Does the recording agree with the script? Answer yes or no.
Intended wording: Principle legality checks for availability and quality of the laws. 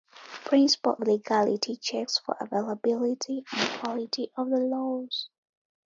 yes